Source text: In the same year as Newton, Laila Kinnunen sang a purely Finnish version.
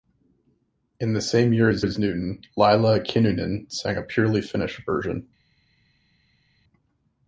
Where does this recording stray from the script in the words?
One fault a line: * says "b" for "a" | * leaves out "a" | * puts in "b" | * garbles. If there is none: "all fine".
* puts in "as"